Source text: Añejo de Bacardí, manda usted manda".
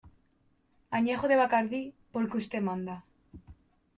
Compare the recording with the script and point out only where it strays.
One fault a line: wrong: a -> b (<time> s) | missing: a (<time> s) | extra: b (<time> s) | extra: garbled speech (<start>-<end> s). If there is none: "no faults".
wrong: manda -> porque (2.1 s)